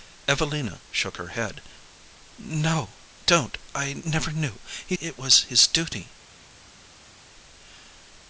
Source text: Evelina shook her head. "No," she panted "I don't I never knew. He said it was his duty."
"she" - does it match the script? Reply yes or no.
no